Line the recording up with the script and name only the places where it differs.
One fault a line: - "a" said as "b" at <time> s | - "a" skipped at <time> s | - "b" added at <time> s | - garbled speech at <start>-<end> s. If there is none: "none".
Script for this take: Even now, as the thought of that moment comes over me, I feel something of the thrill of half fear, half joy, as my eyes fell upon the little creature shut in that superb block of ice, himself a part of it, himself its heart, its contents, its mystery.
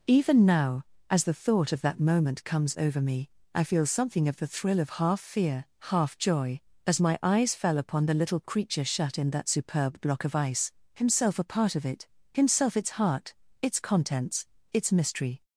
none